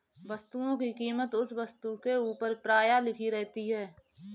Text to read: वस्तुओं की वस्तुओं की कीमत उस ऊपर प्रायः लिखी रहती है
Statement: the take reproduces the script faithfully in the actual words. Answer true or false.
false